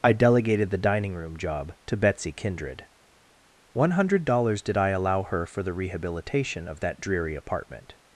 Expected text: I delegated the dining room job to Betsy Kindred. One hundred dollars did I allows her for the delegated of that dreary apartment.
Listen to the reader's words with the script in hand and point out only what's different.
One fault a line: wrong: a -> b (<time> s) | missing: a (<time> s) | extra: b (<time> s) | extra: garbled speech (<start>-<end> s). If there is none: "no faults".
wrong: allows -> allow (4.9 s)
wrong: delegated -> rehabilitation (5.7 s)